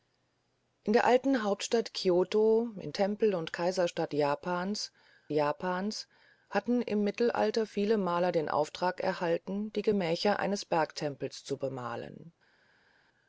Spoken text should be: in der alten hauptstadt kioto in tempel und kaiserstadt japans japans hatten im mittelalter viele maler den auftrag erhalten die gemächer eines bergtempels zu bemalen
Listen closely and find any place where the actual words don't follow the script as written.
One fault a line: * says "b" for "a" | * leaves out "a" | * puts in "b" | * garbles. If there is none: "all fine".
all fine